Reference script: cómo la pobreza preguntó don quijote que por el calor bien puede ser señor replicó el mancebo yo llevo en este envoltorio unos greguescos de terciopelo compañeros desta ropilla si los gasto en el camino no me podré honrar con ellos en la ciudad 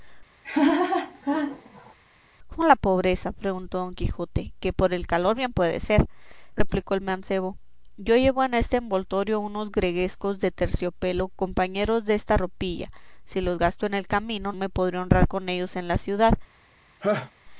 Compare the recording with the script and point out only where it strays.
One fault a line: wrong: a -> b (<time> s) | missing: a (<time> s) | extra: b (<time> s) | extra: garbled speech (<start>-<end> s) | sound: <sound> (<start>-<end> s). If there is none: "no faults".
sound: laugh (0.4-1.9 s)
missing: señor (6.1 s)
missing: no (14.5 s)
sound: laugh (17.0-17.3 s)